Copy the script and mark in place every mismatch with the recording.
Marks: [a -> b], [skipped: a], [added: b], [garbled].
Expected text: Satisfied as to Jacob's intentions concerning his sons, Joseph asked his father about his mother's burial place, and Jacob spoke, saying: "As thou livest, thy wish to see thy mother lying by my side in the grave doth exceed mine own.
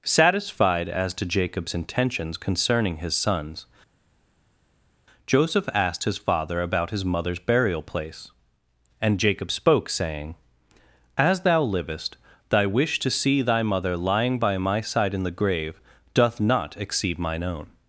Satisfied as to Jacob's intentions concerning his sons, Joseph asked his father about his mother's burial place, and Jacob spoke, saying: "As thou livest, thy wish to see thy mother lying by my side in the grave doth [added: not] exceed mine own.